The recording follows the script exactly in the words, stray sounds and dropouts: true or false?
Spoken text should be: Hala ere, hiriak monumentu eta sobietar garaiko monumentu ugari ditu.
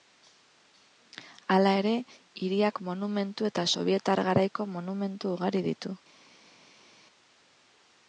true